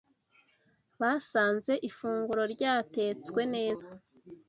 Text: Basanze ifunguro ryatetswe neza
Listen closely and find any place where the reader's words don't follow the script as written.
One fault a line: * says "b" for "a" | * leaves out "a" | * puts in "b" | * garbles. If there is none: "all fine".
all fine